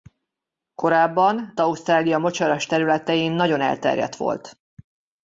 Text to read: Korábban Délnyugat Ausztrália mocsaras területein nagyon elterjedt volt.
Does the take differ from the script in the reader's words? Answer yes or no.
yes